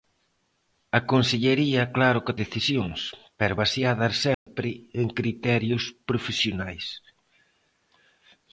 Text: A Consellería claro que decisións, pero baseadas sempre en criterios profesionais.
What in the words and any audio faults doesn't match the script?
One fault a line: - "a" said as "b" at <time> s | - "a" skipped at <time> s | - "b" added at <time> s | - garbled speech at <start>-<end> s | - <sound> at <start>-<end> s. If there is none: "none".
- dropout at 4.3-4.5 s